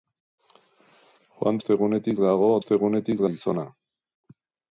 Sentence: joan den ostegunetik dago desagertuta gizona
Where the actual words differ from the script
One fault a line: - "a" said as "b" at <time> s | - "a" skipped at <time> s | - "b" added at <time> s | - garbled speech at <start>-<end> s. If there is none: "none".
- "den" skipped at 1.6 s
- "desagertuta" said as "ostegunetik" at 2.6 s